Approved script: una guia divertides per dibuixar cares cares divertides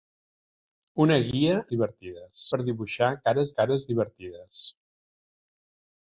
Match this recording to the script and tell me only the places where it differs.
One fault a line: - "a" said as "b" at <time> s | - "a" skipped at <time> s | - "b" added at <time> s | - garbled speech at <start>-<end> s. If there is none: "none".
none